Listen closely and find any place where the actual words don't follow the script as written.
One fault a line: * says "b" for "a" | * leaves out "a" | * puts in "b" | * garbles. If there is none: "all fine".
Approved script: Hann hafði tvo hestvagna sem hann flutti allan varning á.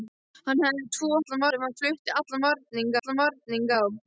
* says "allan" for "hestvagna"
* puts in "allan varning"